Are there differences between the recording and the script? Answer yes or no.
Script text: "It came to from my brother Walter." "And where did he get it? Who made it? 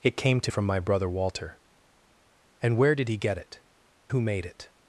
no